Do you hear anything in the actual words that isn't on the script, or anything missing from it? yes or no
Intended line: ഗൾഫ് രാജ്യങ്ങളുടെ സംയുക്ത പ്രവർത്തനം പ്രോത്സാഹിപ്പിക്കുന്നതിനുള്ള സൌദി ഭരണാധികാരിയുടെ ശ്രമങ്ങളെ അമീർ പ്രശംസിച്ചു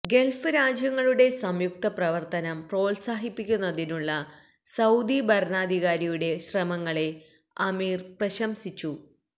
no